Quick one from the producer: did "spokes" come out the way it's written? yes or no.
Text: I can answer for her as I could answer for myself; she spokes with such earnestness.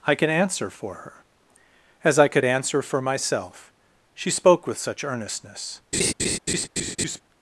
no